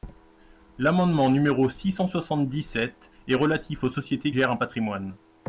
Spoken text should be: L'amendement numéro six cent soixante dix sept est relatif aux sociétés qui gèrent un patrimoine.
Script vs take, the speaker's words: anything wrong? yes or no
yes